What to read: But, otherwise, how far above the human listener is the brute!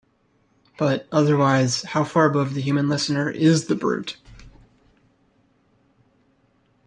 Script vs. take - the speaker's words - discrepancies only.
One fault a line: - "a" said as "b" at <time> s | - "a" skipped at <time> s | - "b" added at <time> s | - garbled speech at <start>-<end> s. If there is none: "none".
none